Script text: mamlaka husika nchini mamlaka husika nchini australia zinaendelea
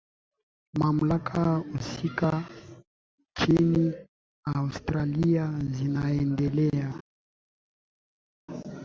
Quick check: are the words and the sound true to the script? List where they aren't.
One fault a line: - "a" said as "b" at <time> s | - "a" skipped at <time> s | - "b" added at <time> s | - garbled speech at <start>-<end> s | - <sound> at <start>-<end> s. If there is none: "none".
- "mamlaka husika nchini" skipped at 3.9 s